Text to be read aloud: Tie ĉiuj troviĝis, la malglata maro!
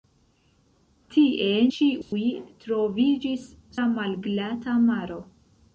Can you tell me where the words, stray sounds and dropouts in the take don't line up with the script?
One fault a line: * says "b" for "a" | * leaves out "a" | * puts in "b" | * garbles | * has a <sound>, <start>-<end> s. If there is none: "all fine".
* has a dropout, 2.0-2.1 s